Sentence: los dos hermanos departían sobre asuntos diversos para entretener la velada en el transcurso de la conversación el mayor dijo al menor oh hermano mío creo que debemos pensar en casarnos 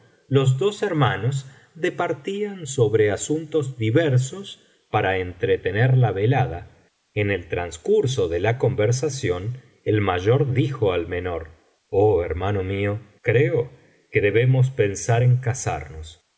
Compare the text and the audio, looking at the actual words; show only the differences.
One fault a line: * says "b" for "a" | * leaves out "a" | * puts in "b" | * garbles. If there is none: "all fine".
all fine